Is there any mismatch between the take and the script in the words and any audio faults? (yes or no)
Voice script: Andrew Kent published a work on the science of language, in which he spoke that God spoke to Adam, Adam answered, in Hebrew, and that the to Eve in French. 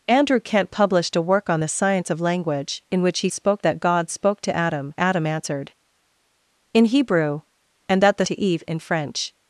no